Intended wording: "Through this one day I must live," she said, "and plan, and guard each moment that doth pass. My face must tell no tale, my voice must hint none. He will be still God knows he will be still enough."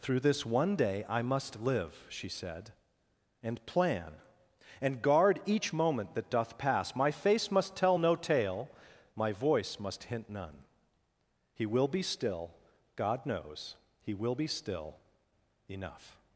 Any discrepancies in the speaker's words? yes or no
no